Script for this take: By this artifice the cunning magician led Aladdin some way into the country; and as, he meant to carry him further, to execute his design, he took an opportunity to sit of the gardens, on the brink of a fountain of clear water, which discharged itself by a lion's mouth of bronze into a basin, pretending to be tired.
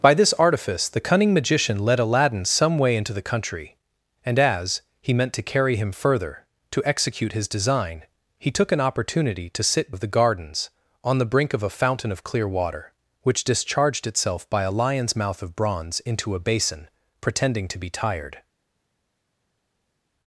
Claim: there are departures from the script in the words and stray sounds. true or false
false